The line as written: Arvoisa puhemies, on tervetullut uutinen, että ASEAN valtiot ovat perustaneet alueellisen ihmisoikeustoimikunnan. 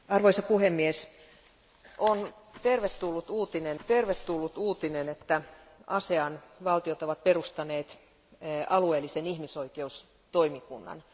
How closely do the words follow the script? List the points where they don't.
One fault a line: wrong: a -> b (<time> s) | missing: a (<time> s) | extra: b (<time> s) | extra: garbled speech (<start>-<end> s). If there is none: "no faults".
extra: tervetullut uutinen (3.9 s)